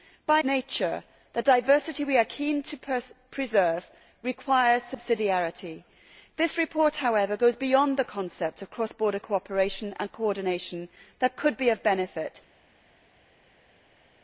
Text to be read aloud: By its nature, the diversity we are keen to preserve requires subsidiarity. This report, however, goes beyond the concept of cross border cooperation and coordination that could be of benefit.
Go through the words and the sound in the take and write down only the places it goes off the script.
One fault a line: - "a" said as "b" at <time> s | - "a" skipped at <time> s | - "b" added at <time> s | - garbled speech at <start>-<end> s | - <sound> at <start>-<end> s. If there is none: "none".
- "its" skipped at 0.4 s